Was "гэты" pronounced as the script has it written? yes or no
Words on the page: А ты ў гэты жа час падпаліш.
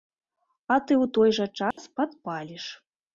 no